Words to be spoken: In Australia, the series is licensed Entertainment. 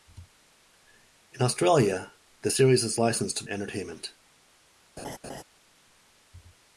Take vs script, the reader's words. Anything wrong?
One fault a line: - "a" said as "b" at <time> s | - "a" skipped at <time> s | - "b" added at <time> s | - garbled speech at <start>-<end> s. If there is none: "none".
none